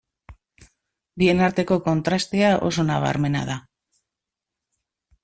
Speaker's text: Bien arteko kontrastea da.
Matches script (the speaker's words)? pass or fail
fail